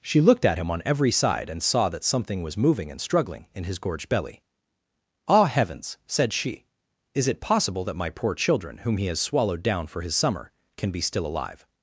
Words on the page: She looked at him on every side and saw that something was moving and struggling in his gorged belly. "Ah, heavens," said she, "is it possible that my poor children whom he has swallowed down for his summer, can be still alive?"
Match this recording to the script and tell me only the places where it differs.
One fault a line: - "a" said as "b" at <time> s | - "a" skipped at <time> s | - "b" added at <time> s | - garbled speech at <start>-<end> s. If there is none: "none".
none